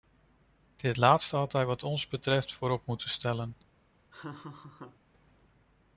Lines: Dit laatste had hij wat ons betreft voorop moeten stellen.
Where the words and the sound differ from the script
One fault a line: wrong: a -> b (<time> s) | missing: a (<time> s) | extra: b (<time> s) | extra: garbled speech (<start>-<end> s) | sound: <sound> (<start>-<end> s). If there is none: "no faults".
sound: laugh (4.1-5.0 s)